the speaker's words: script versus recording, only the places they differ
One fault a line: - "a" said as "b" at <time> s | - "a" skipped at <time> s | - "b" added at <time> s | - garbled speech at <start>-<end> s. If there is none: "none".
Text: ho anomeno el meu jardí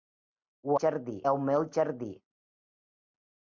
- "anomeno" said as "jardí" at 0.8 s